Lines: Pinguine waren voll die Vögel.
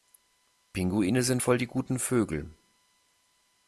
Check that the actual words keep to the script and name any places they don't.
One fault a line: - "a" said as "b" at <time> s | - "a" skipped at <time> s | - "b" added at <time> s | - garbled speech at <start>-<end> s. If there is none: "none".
- "waren" said as "sind" at 1.2 s
- "guten" added at 1.7 s